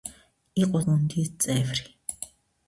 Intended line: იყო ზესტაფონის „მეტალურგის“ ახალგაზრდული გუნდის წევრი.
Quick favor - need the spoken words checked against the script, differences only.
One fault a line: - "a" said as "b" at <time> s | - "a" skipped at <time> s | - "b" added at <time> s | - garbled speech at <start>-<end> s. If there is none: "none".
- "ზესტაფონის მეტალურგის ახალგაზრდული" skipped at 0.8 s